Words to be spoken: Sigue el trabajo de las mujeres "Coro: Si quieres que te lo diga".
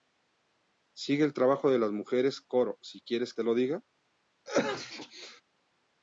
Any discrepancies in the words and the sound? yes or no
yes